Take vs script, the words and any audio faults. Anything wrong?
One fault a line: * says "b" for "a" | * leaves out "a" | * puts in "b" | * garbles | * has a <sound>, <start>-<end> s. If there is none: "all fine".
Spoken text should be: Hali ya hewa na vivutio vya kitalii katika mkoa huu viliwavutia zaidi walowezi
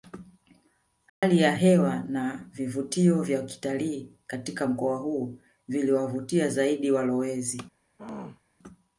* has a dropout, 1.1-1.2 s
* has a throat clearing, 8.0-8.4 s